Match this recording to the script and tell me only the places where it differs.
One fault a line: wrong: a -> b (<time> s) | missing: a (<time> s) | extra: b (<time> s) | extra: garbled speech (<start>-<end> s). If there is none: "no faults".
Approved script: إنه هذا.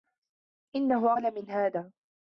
extra: أغلى من (1.1 s)